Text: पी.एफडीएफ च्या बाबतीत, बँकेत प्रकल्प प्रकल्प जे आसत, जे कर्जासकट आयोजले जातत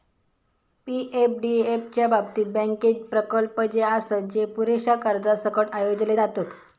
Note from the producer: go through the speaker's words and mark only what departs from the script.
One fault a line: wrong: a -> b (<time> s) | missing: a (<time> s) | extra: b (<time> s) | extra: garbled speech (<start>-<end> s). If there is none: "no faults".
missing: प्रकल्प (3.6 s)
extra: पुरेशा (4.5 s)